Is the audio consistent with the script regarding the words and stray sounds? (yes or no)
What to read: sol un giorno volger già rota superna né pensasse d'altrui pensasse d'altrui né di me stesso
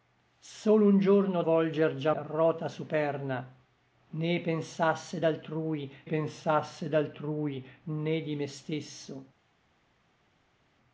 yes